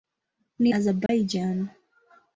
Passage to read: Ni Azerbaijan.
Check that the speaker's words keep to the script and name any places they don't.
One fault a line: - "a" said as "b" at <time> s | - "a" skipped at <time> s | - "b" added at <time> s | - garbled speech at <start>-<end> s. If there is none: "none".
none